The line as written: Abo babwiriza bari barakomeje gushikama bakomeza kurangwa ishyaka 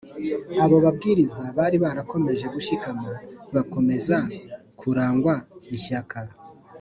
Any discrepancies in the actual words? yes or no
no